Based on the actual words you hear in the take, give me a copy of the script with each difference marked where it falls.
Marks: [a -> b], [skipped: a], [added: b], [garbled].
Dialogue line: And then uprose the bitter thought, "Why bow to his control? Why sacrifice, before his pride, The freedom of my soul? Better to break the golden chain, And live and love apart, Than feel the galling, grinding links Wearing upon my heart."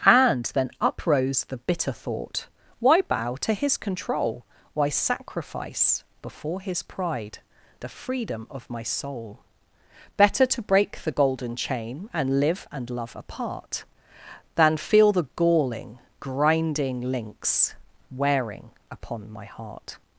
And then uprose the bitter thought, "Why bow to his control? Why sacrifice, before his pride, The freedom of my soul? Better to break the golden chain, And live and love apart, Than feel the galling, grinding links Wearing upon my heart."